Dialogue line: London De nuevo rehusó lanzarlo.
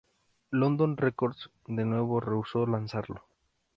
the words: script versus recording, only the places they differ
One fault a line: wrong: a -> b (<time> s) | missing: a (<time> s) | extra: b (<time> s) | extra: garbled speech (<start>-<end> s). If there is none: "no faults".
extra: Records (1.0 s)